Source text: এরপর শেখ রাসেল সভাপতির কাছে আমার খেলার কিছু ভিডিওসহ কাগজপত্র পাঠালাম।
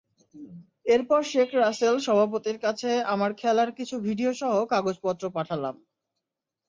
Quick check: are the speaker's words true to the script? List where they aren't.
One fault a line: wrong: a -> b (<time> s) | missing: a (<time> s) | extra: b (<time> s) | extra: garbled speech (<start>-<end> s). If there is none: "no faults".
no faults